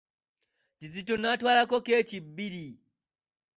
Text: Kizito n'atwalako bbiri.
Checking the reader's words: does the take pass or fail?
fail